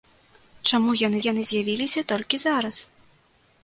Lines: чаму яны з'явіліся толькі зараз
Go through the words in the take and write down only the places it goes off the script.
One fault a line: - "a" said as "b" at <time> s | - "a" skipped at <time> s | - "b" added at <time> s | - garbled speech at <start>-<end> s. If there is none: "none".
- "яны" added at 1.2 s